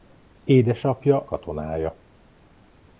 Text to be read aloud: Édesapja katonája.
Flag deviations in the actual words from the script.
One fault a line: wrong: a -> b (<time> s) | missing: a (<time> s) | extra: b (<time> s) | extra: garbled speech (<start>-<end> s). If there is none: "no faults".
no faults